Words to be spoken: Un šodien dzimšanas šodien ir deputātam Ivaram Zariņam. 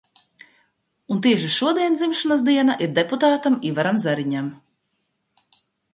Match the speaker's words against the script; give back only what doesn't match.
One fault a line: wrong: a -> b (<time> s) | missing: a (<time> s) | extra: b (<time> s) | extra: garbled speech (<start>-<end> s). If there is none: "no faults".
extra: tieši (1.2 s)
wrong: šodien -> diena (2.5 s)